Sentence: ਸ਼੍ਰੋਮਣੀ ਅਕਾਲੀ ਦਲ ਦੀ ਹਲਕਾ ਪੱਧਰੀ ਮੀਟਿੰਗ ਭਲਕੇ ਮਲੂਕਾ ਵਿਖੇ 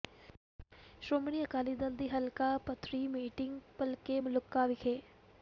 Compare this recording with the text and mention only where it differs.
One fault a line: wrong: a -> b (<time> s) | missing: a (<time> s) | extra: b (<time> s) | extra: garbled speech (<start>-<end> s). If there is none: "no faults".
no faults